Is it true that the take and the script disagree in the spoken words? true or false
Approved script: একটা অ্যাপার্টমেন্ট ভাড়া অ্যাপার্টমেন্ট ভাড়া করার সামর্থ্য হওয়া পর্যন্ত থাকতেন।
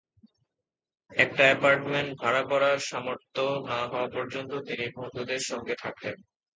true